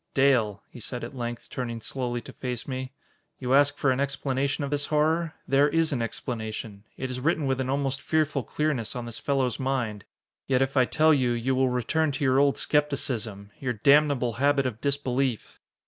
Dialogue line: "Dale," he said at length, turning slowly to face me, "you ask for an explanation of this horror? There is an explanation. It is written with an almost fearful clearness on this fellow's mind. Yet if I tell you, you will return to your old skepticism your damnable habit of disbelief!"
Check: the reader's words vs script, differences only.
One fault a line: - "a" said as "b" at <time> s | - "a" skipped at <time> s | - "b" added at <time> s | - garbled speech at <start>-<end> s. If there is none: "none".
none